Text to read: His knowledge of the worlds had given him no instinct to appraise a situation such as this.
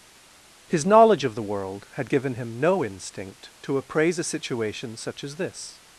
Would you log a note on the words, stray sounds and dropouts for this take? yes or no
yes